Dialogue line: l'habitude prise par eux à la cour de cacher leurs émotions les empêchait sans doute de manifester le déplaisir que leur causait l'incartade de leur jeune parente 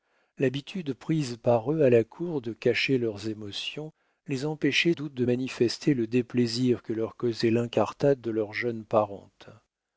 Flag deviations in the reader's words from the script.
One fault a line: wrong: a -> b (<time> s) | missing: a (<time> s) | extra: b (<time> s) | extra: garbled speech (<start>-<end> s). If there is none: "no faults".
missing: sans (5.0 s)